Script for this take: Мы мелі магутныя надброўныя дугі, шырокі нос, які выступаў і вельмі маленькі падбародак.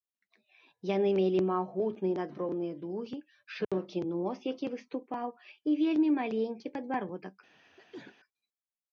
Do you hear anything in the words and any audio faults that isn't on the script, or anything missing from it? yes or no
yes